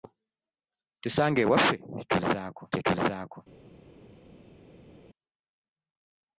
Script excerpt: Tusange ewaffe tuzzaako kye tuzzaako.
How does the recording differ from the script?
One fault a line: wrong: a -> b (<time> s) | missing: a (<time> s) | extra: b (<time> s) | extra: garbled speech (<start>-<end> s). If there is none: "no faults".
no faults